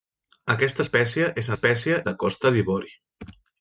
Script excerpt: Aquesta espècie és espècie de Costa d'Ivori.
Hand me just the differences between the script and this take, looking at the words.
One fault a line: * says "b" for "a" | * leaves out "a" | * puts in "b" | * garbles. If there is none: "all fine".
all fine